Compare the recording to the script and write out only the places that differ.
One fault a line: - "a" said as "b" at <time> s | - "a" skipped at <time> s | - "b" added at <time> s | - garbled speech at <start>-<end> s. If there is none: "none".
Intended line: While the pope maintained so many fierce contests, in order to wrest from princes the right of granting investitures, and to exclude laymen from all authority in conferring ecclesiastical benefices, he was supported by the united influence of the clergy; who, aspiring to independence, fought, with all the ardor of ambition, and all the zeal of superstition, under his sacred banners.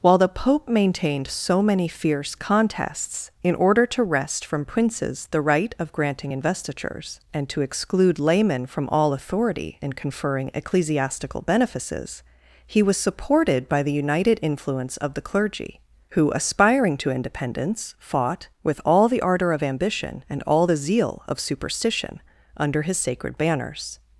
none